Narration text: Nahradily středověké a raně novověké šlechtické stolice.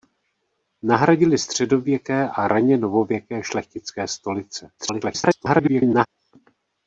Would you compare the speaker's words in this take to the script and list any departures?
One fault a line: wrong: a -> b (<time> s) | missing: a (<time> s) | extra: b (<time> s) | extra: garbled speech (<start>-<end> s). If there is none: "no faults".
extra: garbled speech (4.8-6.1 s)